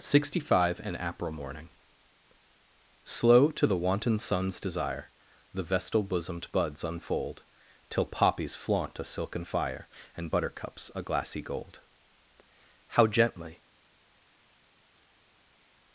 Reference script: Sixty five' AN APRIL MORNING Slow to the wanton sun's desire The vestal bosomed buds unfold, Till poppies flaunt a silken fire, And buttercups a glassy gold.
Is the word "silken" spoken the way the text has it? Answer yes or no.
yes